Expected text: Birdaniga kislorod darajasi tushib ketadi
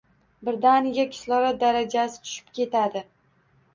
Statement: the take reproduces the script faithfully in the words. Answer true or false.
true